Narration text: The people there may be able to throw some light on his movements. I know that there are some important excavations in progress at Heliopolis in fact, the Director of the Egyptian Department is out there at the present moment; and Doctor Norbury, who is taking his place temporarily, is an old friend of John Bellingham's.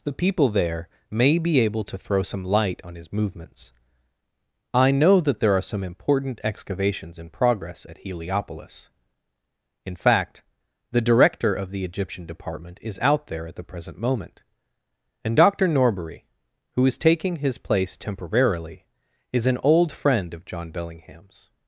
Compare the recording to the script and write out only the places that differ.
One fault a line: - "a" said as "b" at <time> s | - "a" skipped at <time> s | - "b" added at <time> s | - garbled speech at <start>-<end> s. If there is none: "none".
none